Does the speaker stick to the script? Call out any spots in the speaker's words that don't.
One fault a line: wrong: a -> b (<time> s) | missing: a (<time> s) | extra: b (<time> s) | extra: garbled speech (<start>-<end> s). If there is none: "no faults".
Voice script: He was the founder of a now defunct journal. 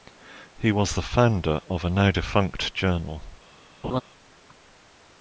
no faults